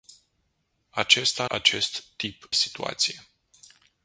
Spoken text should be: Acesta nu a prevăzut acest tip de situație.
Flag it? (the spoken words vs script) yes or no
yes